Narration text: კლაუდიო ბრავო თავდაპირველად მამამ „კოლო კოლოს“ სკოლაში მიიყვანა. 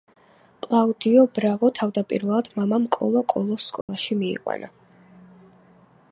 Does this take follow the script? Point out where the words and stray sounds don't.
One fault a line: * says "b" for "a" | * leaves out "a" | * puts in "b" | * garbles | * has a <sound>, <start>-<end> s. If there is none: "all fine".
* has a dropout, 3.8-3.9 s